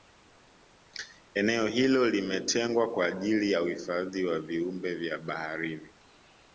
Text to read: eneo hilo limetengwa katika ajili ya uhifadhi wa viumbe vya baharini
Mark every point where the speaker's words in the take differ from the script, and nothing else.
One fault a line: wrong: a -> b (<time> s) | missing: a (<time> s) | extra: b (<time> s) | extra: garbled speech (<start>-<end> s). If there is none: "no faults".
wrong: katika -> kwa (2.9 s)